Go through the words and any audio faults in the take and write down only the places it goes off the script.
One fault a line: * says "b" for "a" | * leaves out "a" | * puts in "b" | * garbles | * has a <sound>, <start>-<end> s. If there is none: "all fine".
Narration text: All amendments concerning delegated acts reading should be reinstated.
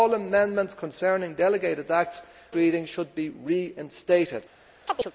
* has a chirp, 4.9-5.1 s